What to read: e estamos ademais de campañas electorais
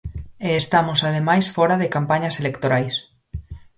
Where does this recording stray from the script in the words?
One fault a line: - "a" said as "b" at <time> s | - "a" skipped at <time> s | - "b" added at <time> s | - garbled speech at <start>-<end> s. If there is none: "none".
- "fóra" added at 1.6 s